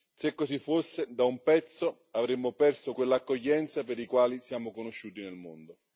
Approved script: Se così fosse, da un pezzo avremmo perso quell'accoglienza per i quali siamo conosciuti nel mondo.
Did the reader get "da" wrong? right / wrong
right